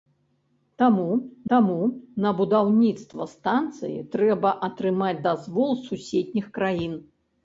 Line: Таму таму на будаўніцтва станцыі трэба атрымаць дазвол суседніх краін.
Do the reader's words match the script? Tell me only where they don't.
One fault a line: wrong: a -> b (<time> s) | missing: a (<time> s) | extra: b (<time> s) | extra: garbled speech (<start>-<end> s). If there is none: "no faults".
no faults